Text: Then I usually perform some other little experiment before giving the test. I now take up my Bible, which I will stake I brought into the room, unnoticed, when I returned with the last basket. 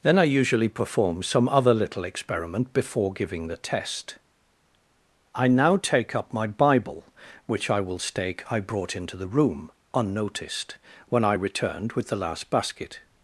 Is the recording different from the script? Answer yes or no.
no